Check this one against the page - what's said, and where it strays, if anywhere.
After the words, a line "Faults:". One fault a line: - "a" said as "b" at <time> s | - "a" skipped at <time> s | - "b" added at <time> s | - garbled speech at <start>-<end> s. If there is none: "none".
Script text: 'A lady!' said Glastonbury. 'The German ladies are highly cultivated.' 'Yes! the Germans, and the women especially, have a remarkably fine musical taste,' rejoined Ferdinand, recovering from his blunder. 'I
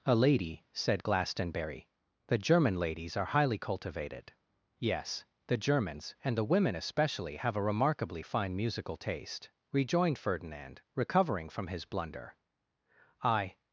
'A lady!' said Glastonbury. 'The German ladies are highly cultivated.' 'Yes! the Germans, and the women especially, have a remarkably fine musical taste,' rejoined Ferdinand, recovering from his blunder. 'I
Faults:
none